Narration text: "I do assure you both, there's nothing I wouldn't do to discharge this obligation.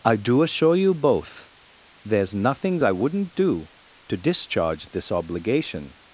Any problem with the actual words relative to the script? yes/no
yes